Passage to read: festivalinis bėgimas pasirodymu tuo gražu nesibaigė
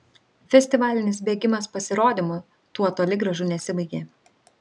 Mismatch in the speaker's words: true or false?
true